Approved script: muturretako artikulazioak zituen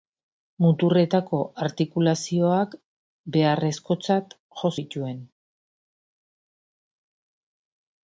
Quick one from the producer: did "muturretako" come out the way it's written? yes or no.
yes